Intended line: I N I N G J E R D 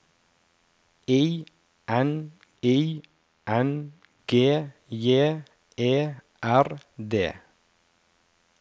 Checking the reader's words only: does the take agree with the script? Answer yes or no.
yes